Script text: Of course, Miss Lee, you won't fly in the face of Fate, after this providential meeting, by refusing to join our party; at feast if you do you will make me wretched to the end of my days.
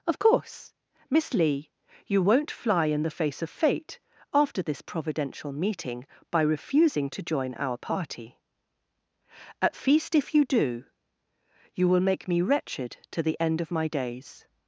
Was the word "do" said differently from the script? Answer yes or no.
no